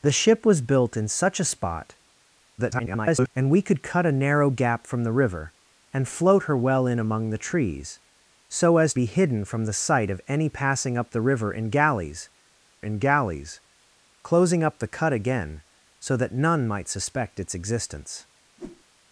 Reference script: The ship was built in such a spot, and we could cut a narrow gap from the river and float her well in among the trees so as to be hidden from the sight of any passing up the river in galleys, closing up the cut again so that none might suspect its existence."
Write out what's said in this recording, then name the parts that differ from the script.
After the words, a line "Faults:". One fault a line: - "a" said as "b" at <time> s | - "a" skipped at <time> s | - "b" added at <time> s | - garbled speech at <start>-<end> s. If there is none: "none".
The ship was built in such a spot, [garbled] and we could cut a narrow gap from the river and float her well in among the trees so as be hidden from the sight of any passing up the river in galleys in galleys, closing up the cut again so that none might suspect its existence."
Faults:
- garbled speech at 2.6-3.3 s
- "to" skipped at 8.9 s
- "in galleys" added at 12.8 s